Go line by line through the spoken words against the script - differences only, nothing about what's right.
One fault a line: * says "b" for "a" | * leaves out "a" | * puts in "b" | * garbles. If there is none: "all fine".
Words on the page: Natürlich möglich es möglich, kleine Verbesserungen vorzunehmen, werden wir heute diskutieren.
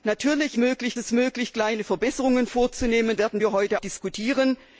all fine